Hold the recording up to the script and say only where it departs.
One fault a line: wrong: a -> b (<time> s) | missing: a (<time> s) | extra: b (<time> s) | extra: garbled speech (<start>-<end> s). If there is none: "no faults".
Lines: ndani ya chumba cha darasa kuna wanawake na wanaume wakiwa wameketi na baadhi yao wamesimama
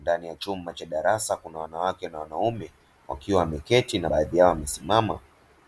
no faults